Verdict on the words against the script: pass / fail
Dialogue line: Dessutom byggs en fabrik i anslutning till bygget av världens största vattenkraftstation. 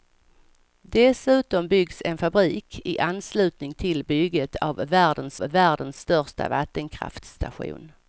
fail